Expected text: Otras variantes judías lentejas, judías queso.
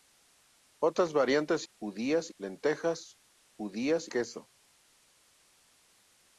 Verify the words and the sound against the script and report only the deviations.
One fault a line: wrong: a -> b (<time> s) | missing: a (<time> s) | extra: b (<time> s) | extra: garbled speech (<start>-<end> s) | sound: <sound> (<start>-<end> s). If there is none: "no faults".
no faults